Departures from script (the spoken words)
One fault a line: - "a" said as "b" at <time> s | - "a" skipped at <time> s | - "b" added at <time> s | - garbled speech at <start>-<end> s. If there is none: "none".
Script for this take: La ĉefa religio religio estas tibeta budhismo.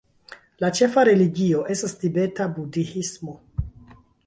- "religio" skipped at 1.6 s